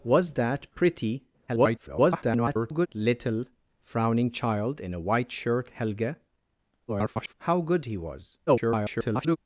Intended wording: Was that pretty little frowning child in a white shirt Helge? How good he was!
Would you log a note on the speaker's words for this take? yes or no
yes